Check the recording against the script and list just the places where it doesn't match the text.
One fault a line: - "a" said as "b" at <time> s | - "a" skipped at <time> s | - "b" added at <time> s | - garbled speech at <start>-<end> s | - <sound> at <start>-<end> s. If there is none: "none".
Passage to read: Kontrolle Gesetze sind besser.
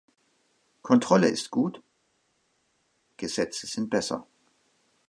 - "ist gut" added at 1.3 s